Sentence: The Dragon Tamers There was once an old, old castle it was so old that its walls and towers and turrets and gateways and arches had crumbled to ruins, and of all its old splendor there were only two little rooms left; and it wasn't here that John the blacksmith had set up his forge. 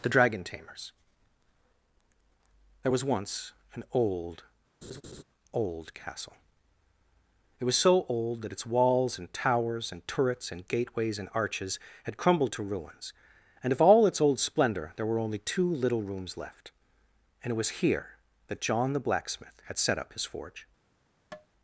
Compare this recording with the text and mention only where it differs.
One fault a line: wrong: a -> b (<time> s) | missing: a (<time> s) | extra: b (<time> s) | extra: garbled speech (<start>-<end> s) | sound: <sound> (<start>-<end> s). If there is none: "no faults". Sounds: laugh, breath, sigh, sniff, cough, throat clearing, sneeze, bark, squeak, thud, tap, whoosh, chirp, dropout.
sound: laugh (4.8-5.2 s)
wrong: wasn't -> was (17.6 s)
sound: tap (21.3-21.5 s)